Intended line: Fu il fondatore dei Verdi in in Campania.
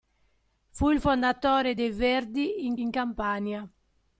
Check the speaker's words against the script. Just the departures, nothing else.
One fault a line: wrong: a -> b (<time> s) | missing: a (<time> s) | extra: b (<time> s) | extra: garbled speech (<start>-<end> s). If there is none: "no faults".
no faults